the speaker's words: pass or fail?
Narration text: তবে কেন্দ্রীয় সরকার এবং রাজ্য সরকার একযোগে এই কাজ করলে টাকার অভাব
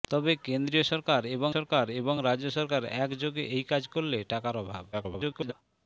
fail